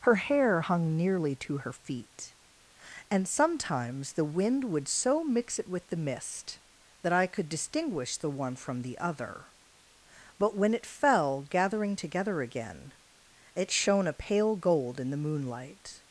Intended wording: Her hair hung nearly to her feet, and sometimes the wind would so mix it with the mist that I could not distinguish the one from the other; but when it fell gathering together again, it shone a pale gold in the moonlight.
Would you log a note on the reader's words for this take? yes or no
yes